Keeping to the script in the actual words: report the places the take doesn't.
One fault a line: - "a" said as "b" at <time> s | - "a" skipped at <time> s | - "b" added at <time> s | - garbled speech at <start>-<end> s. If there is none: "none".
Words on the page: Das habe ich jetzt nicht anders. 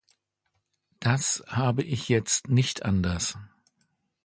none